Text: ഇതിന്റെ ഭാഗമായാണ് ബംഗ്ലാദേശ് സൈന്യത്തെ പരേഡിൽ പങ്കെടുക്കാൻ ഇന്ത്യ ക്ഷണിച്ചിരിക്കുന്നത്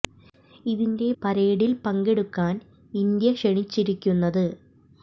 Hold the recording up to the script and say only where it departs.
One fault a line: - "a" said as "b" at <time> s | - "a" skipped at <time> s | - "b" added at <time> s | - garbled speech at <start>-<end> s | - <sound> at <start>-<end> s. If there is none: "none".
- "ഭാഗമായാണ് ബംഗ്ലാദേശ് സൈന്യത്തെ" skipped at 1.1 s